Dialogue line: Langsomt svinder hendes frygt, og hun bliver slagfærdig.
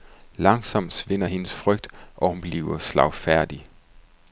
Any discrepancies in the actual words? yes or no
no